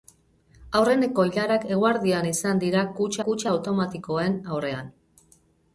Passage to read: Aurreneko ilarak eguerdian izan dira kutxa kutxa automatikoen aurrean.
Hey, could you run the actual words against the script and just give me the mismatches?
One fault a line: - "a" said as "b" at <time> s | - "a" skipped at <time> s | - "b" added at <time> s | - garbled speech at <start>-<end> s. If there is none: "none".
none